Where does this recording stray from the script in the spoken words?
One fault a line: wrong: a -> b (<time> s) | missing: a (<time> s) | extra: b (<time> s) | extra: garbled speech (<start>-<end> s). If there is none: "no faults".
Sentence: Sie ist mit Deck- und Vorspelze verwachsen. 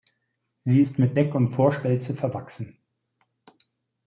no faults